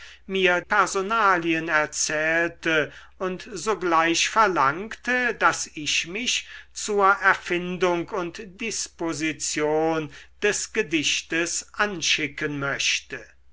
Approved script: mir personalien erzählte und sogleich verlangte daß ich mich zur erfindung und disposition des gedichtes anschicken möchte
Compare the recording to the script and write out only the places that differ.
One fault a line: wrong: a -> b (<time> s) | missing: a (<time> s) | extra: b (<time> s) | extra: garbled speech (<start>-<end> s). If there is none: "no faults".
no faults